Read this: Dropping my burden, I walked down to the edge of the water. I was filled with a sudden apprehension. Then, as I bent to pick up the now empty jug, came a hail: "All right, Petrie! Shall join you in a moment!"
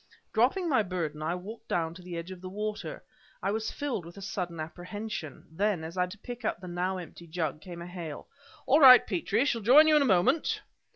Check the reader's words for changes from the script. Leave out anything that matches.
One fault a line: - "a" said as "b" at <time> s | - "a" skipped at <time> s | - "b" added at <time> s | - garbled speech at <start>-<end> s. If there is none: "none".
- "bent" skipped at 6.1 s